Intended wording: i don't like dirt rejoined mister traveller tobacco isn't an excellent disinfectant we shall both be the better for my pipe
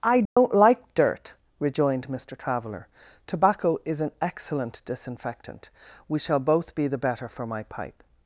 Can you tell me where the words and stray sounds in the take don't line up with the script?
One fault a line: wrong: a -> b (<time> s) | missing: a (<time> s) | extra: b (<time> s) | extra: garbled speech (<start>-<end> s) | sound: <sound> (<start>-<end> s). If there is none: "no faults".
sound: dropout (0.3-0.4 s)
wrong: isn't -> is (3.9 s)